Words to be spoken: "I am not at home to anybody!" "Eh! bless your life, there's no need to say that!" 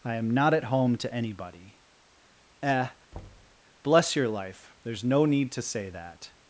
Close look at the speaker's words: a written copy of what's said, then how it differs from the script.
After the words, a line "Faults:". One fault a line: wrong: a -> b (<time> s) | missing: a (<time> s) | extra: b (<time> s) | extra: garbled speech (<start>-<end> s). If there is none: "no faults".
"I am not at home to anybody!" "Eh! bless your life, there's no need to say that!"
Faults:
no faults